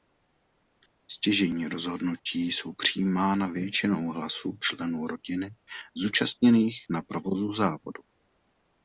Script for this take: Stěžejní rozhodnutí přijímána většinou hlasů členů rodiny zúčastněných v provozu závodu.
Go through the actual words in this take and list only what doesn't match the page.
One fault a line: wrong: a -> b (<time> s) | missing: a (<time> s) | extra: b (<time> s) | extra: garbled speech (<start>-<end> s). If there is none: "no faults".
extra: jsou (2.5 s)
wrong: v -> na (6.9 s)